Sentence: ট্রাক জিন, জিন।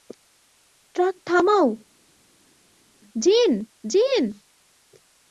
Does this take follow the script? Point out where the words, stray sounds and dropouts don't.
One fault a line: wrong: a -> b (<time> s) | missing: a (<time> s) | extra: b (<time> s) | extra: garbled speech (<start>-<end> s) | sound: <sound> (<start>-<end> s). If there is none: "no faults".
extra: থামাও (1.3 s)